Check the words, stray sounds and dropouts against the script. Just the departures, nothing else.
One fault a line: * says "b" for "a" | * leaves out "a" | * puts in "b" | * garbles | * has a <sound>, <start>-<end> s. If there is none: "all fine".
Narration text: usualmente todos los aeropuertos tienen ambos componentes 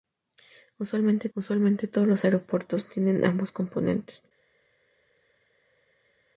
* puts in "usualmente"